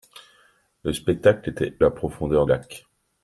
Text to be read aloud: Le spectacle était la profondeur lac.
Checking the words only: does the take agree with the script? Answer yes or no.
yes